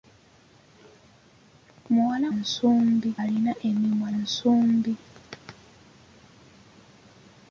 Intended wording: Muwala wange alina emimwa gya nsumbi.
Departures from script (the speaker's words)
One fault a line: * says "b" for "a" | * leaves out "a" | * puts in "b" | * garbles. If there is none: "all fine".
* says "nsumbi" for "wange"
* leaves out "gya"